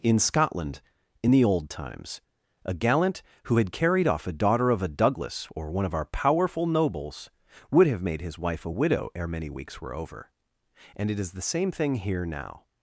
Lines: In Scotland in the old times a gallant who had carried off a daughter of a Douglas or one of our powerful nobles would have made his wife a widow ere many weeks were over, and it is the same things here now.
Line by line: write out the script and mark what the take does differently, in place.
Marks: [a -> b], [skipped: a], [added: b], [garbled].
In Scotland in the old times a gallant who had carried off a daughter of a Douglas or one of our powerful nobles would have made his wife a widow ere many weeks were over, and it is the same [things -> thing] here now.